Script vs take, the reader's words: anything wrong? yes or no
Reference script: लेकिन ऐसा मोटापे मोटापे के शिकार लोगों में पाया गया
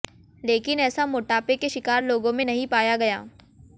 yes